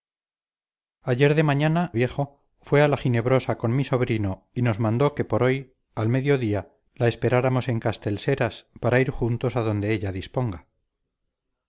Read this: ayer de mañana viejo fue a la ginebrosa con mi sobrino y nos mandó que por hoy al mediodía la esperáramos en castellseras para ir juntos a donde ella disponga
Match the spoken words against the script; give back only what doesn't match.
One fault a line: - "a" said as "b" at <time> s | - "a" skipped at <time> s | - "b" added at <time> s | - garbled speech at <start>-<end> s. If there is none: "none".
none